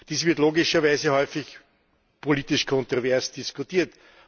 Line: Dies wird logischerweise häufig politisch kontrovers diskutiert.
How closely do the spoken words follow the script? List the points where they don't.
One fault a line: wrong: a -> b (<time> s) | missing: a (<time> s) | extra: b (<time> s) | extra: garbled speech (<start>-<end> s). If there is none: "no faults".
no faults